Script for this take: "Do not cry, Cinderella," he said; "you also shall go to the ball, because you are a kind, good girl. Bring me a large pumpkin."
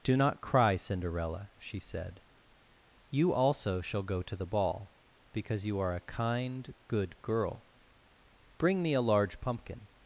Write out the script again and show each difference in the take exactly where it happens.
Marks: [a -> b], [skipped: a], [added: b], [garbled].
"Do not cry, Cinderella," [he -> she] said; "you also shall go to the ball, because you are a kind, good girl. Bring me a large pumpkin."